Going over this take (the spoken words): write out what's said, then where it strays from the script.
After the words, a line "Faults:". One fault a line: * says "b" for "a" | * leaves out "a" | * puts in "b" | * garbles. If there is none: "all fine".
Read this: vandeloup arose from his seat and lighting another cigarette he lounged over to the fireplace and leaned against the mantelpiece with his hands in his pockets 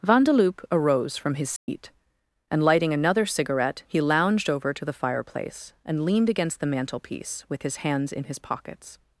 vandeloup arose from his seat and lighting another cigarette he lounged over to the fireplace and leaned against the mantelpiece with his hands in his pockets
Faults:
all fine